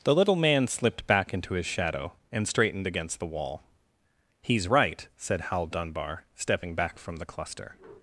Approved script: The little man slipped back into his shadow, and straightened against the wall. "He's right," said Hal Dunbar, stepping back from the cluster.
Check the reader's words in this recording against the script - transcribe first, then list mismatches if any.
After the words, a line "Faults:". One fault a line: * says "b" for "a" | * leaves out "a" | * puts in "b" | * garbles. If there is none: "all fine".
The little man slipped back into his shadow, and straightened against the wall. "He's right," said Hal Dunbar, stepping back from the cluster.
Faults:
all fine